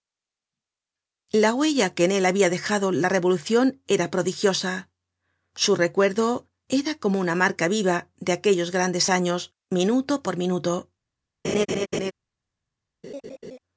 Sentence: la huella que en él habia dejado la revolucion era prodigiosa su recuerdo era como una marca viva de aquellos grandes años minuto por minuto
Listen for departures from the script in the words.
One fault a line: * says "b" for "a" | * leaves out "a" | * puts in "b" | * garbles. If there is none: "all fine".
all fine